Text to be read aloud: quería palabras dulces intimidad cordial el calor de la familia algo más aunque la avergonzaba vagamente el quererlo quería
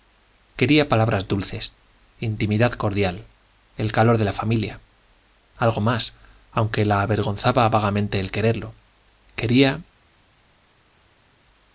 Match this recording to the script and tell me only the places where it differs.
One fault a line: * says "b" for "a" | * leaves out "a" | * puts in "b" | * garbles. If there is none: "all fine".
all fine